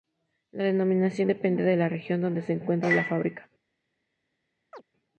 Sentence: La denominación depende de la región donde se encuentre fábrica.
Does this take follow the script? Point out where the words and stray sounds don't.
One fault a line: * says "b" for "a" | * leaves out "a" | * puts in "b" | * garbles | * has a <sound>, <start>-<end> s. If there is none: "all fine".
* puts in "la"
* has a chirp, 4.7-4.8 s